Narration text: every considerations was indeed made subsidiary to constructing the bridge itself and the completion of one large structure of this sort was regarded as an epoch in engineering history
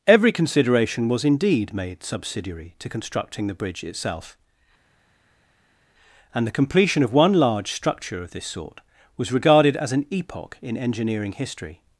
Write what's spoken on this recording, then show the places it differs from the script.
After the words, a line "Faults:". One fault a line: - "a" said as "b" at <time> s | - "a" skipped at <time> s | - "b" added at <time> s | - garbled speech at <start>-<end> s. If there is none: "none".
every consideration was indeed made subsidiary to constructing the bridge itself and the completion of one large structure of this sort was regarded as an epoch in engineering history
Faults:
- "considerations" said as "consideration" at 0.3 s